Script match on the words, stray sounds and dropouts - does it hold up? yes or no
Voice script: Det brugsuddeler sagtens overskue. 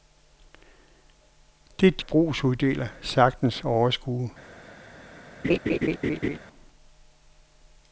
no